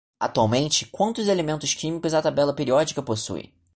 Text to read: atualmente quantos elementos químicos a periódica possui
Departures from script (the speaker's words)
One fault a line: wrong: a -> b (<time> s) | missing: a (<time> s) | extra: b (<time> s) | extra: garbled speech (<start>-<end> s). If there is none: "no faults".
extra: tabela (2.2 s)